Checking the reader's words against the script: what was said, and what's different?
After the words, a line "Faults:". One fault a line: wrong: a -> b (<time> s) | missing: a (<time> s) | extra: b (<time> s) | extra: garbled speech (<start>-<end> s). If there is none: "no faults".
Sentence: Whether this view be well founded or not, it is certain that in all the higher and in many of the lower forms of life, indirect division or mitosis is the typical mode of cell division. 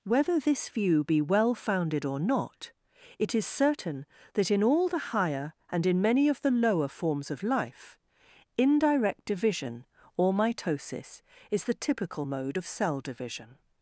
Whether this view be well founded or not, it is certain that in all the higher and in many of the lower forms of life, indirect division or mitosis is the typical mode of cell division.
Faults:
no faults